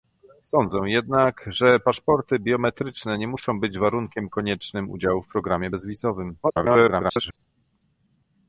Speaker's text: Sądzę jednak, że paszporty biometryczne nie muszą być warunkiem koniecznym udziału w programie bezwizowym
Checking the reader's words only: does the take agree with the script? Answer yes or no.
no